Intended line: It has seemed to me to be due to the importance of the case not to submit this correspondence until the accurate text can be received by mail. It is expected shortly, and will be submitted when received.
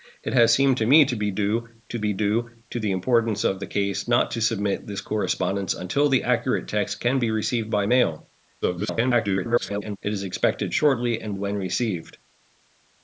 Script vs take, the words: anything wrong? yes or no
yes